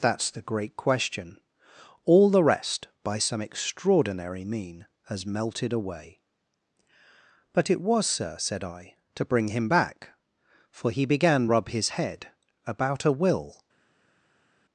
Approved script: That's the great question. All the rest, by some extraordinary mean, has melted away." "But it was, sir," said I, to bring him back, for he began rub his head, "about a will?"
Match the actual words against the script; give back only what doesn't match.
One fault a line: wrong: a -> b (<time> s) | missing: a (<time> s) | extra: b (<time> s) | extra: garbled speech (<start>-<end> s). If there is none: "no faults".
no faults